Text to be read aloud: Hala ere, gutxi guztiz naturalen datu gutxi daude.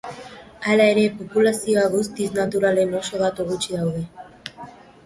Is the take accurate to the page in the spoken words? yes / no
no